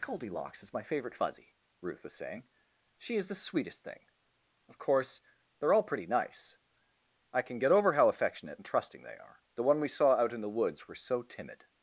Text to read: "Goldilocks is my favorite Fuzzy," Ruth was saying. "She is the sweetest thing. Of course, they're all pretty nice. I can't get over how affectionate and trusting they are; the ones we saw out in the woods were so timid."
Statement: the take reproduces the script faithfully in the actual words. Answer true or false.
false